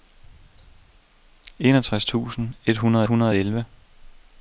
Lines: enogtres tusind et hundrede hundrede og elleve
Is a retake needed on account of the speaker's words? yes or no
no